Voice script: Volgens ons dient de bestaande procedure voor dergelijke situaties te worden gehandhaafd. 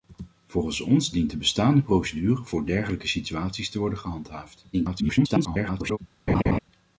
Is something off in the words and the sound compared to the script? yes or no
yes